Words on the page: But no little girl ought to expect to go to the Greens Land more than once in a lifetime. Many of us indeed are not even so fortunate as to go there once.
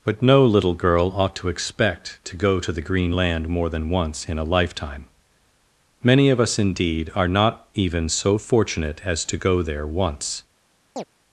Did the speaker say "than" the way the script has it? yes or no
yes